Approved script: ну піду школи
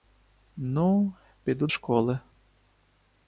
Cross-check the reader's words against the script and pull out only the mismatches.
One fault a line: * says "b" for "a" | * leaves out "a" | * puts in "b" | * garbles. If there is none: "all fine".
all fine